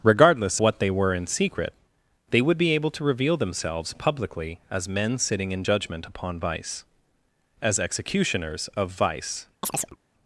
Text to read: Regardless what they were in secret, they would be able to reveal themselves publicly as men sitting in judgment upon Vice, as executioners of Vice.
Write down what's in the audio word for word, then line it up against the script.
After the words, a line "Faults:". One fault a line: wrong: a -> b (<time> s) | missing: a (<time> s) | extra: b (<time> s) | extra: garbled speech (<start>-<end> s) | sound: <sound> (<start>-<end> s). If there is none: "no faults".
Regardless what they were in secret, they would be able to reveal themselves publicly as men sitting in judgment upon Vice, as executioners of Vice.
Faults:
sound: chirp (9.6-10.0 s)